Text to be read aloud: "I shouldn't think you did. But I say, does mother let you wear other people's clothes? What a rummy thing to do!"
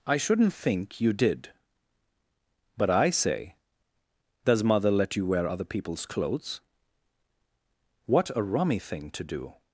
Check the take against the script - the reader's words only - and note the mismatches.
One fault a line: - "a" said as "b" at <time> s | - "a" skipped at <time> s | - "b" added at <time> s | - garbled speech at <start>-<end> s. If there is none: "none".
none